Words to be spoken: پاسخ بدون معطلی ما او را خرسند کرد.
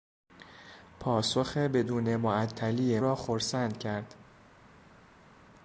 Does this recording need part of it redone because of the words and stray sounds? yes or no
yes